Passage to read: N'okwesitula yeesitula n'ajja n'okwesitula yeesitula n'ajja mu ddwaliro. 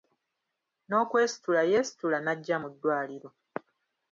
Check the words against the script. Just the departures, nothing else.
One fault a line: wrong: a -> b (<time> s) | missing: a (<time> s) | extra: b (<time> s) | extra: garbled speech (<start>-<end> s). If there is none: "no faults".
missing: n'okwesitula yeesitula n'ajja (2.6 s)